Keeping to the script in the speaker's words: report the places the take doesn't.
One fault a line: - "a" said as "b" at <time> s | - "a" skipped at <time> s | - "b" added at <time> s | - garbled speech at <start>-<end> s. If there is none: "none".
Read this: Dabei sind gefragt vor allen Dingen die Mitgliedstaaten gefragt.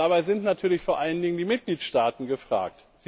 - "gefragt" said as "natürlich" at 0.4 s